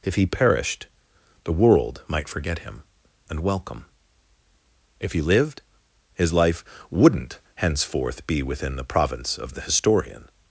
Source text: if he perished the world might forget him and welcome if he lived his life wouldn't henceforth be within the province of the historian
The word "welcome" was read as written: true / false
true